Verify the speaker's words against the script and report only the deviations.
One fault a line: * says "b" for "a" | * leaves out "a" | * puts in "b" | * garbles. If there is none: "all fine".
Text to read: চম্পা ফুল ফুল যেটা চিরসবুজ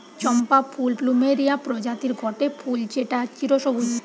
* puts in "প্লুমেরিয়া প্রজাতির গটে"